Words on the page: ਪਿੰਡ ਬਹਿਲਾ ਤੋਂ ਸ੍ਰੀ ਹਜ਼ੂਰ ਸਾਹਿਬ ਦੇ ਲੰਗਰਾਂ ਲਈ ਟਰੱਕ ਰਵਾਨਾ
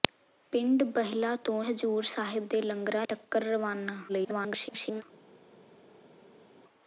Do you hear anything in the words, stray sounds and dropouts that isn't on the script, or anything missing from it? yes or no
yes